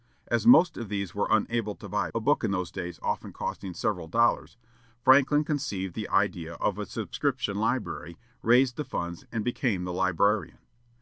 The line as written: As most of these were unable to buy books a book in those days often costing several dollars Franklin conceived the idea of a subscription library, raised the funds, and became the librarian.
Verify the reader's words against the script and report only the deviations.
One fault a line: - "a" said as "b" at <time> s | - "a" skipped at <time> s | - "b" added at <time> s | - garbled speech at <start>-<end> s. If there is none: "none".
- "books" skipped at 2.1 s